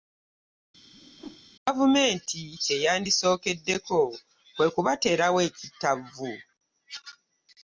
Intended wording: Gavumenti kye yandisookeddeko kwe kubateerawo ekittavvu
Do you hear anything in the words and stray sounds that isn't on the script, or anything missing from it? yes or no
yes